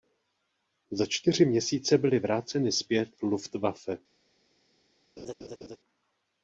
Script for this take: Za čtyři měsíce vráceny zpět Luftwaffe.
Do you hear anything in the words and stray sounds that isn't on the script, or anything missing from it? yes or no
yes